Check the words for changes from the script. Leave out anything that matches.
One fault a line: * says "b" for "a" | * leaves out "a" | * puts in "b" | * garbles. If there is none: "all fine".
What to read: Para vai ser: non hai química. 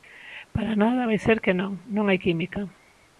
* puts in "nada"
* puts in "que non"